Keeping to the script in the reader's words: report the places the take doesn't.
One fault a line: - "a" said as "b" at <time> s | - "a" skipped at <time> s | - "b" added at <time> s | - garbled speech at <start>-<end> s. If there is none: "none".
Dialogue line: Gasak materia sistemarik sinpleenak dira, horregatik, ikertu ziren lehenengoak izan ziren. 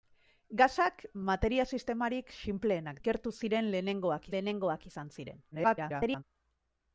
- "dira horregatik" skipped at 3.0 s
- "lehenengoak" added at 4.4 s
- garbled speech at 5.5-6.2 s